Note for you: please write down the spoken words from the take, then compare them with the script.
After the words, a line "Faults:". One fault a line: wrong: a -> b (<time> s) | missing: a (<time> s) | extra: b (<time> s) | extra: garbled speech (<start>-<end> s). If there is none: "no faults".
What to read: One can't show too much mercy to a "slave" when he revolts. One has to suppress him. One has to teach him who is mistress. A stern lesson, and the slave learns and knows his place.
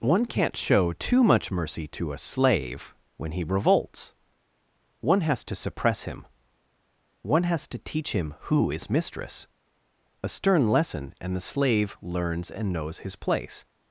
One can't show too much mercy to a "slave" when he revolts. One has to suppress him. One has to teach him who is mistress. A stern lesson, and the slave learns and knows his place.
Faults:
no faults